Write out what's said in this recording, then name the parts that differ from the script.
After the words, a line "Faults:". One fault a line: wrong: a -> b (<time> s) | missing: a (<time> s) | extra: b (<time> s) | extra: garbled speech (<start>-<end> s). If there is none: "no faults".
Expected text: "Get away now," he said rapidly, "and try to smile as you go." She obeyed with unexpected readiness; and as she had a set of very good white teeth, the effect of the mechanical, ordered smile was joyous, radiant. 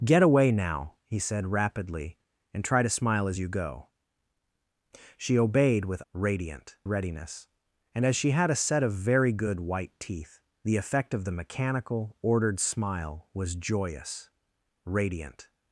"Get away now," he said rapidly, "and try to smile as you go." She obeyed with radiant readiness; and as she had a set of very good white teeth, the effect of the mechanical, ordered smile was joyous, radiant.
Faults:
wrong: unexpected -> radiant (6.1 s)